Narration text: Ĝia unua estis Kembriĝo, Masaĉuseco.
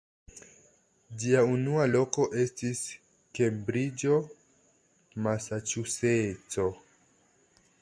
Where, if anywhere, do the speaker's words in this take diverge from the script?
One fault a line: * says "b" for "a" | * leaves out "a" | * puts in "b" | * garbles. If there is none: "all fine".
* puts in "loko"